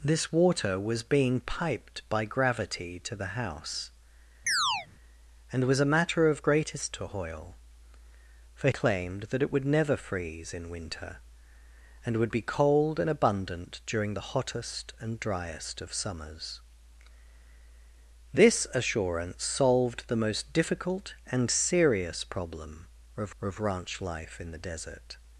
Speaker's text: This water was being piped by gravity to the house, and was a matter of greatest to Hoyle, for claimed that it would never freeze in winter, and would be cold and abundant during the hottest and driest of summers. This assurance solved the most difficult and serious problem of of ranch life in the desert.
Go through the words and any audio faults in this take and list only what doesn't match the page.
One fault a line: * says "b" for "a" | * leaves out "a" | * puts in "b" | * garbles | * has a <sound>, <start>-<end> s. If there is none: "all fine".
* has a chirp, 4.5-4.9 s